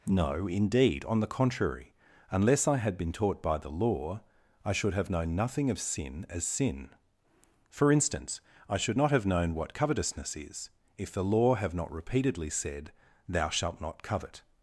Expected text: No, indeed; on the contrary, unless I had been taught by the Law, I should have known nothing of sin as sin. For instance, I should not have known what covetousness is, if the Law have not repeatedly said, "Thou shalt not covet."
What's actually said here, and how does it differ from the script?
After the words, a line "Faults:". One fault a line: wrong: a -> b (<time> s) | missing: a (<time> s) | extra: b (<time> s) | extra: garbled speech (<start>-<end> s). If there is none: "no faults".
No, indeed; on the contrary, unless I had been taught by the Law, I should have known nothing of sin as sin. For instance, I should not have known what covetousness is, if the Law have not repeatedly said, "Thou shalt not covet."
Faults:
no faults